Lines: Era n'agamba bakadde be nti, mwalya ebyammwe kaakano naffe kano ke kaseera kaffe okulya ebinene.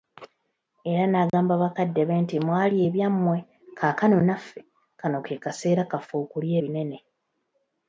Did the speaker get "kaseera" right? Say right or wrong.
right